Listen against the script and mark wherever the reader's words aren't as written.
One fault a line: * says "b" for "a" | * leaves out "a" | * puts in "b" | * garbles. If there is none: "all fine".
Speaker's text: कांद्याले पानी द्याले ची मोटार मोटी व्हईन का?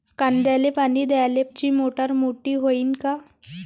all fine